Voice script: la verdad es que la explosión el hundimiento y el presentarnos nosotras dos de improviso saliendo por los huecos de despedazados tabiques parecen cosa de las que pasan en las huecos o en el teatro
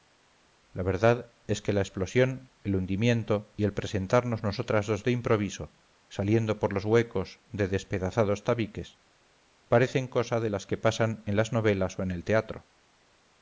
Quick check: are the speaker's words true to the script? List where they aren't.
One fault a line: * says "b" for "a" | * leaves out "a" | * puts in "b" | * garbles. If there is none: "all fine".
* says "novelas" for "huecos"